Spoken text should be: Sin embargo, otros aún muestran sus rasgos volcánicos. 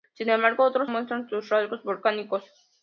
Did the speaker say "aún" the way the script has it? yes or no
no